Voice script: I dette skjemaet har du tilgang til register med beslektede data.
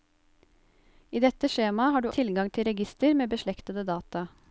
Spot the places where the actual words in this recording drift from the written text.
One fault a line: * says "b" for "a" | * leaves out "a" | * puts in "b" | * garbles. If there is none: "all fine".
all fine